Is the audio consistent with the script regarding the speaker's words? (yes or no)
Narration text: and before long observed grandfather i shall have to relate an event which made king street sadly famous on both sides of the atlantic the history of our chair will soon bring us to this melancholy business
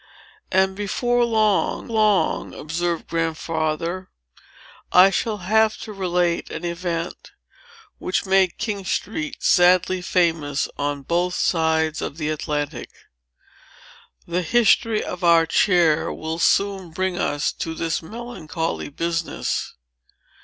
no